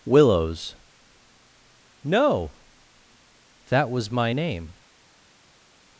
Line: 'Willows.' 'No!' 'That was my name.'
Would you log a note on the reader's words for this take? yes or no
no